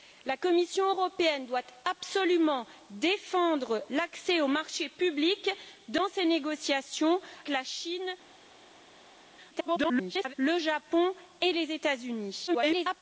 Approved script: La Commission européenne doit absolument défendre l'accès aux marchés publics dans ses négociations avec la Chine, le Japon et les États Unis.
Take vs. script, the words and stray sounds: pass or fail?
fail